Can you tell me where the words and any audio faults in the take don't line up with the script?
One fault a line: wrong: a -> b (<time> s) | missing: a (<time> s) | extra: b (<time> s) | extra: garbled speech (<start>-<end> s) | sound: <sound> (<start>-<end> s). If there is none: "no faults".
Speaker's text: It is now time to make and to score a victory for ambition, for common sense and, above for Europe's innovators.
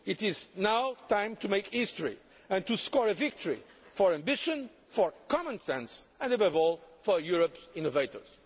extra: history (1.7 s)
extra: all (6.5 s)